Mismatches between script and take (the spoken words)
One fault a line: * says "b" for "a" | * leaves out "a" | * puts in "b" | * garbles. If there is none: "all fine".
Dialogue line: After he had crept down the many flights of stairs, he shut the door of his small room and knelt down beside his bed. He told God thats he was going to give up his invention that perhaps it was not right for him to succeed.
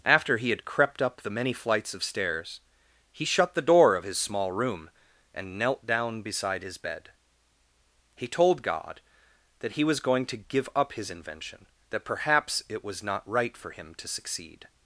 * says "up" for "down"
* says "that" for "thats"